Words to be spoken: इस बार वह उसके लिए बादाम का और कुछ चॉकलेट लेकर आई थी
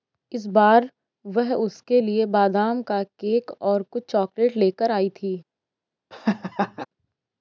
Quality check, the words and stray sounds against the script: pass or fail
fail